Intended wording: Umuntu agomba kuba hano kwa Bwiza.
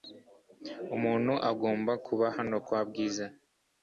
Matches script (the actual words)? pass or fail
pass